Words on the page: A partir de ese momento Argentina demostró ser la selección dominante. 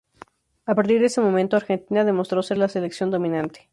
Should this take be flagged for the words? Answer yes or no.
no